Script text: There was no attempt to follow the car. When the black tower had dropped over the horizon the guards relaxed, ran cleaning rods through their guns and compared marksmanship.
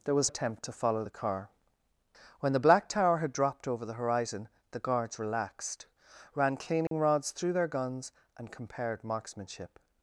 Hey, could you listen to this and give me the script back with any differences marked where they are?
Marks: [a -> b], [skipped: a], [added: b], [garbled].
There was [skipped: no] attempt to follow the car. When the black tower had dropped over the horizon the guards relaxed, ran cleaning rods through their guns and compared marksmanship.